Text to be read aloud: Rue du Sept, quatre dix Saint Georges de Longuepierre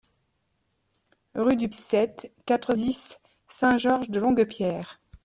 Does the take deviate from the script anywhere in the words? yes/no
no